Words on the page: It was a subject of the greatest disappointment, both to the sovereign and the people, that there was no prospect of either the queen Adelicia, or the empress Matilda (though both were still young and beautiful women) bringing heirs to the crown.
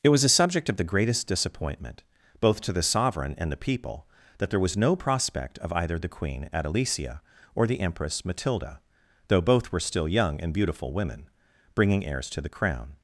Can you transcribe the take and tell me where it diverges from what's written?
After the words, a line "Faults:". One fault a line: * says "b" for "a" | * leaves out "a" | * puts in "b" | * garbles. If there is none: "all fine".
It was a subject of the greatest disappointment, both to the sovereign and the people, that there was no prospect of either the queen Adelicia, or the empress Matilda (though both were still young and beautiful women) bringing heirs to the crown.
Faults:
all fine